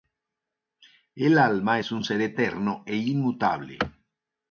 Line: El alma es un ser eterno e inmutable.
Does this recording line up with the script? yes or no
yes